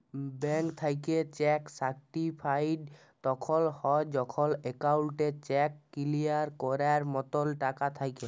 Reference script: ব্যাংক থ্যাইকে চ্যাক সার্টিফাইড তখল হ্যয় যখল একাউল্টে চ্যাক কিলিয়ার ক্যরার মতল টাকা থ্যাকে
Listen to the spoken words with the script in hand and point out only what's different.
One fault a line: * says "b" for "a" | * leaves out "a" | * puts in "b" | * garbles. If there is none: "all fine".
all fine